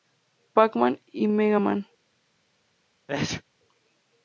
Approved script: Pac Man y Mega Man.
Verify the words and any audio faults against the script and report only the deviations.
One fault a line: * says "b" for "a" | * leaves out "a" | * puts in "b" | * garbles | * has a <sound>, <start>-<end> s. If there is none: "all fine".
* has a sneeze, 3.1-3.4 s